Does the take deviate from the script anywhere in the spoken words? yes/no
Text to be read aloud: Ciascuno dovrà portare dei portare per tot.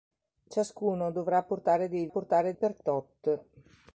no